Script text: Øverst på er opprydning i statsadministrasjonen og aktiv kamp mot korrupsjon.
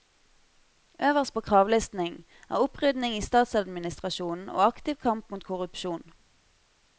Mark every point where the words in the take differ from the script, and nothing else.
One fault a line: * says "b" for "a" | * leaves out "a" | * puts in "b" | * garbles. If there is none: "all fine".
* puts in "kravlisten"